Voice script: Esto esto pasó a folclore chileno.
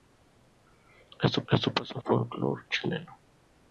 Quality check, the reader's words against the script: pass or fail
pass